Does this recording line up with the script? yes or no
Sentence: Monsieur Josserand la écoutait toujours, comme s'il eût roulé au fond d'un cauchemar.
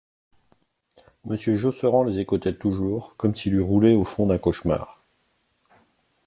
no